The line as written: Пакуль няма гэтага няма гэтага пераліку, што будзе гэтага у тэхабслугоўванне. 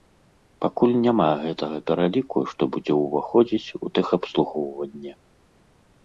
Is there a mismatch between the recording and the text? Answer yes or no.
yes